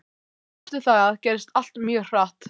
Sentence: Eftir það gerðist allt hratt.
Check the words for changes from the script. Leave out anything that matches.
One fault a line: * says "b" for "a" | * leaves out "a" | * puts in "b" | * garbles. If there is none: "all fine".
* puts in "mjög"